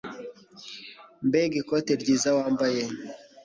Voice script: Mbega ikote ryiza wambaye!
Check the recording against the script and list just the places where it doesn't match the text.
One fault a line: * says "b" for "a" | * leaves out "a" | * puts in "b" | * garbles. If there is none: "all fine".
all fine